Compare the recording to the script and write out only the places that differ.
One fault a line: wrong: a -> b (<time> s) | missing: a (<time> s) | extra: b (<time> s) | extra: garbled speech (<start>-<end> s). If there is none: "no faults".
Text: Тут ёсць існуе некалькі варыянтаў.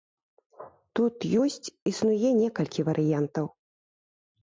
no faults